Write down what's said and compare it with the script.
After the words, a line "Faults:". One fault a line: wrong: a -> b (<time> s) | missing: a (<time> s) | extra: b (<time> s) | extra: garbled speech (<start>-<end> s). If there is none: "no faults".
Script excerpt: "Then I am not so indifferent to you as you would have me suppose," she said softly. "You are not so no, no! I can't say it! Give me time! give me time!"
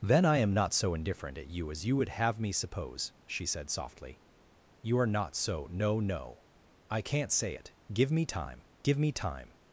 "Then I am not so indifferent at you as you would have me suppose," she said softly. "You are not so no, no! I can't say it! Give me time! give me time!"
Faults:
wrong: to -> at (1.4 s)